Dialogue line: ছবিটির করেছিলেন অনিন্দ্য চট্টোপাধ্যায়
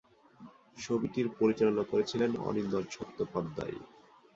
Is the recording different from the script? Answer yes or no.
yes